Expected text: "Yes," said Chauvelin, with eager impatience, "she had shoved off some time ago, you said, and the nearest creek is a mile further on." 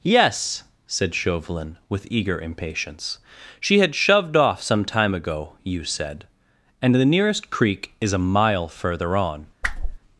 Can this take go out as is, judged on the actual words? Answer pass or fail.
pass